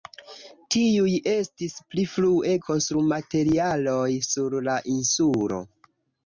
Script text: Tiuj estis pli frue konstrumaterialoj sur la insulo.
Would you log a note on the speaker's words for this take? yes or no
no